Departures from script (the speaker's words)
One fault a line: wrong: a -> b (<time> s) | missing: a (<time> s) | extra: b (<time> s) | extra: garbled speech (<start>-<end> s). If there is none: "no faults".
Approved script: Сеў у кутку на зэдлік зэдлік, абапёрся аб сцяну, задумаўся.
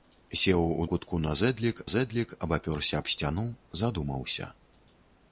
no faults